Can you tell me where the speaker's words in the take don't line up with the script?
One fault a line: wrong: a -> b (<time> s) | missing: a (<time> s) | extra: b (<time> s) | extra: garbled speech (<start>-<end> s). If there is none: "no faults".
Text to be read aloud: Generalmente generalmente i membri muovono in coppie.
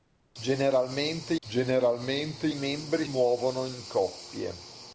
no faults